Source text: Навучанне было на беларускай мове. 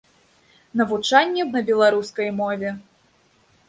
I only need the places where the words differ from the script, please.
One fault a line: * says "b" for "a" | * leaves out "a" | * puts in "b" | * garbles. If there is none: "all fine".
* leaves out "было"